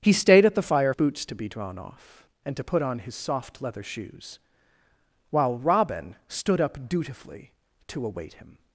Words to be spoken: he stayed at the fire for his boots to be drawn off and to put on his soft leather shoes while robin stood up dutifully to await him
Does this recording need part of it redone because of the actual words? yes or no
yes